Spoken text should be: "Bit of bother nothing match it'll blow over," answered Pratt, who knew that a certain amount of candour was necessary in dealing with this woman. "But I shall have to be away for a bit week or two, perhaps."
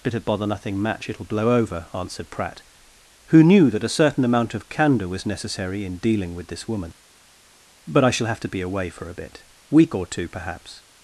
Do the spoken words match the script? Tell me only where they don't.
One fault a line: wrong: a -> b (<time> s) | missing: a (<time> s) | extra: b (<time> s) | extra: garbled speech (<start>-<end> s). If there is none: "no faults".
no faults